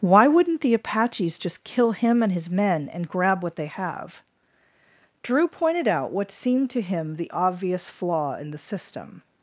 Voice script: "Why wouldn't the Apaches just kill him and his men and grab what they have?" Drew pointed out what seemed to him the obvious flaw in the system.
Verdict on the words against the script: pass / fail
pass